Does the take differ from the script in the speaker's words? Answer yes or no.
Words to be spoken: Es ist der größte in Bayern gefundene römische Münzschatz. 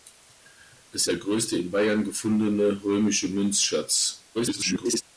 yes